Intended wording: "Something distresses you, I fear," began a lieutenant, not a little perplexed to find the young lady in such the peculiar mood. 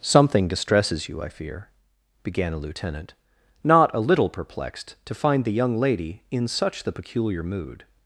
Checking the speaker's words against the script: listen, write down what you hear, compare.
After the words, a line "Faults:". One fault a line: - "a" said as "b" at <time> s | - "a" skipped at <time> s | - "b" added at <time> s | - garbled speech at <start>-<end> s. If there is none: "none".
"Something distresses you, I fear," began a lieutenant, not a little perplexed to find the young lady in such the peculiar mood.
Faults:
none